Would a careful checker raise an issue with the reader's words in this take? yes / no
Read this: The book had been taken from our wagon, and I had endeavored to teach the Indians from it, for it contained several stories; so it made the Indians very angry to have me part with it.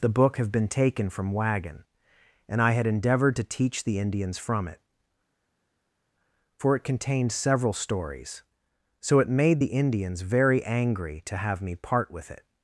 yes